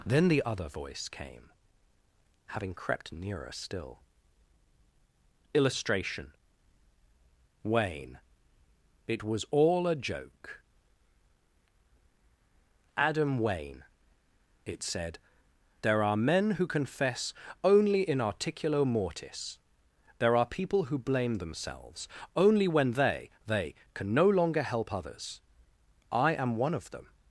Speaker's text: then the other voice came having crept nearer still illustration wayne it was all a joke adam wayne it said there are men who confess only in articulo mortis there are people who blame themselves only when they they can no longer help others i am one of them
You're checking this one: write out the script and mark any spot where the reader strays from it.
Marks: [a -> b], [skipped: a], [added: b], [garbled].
then the other voice came having crept nearer still illustration wayne it was all a joke adam wayne it said there are men who confess only in articulo mortis there are people who blame themselves only when they they can no longer help others i am one of them